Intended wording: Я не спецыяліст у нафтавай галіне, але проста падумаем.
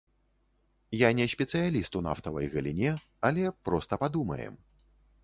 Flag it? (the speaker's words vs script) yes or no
no